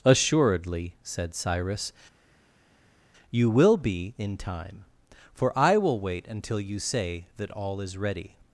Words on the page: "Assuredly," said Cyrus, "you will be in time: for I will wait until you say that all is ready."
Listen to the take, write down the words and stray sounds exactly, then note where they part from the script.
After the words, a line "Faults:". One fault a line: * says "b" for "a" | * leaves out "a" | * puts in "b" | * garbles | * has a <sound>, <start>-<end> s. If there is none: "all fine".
"Assuredly," said Cyrus, "you will be in time: for I will wait until you say that all is ready."
Faults:
all fine